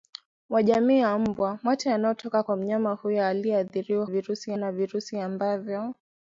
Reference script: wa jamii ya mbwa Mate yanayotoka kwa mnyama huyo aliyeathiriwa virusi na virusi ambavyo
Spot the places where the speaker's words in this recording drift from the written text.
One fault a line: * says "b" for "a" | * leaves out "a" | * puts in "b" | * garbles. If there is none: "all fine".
all fine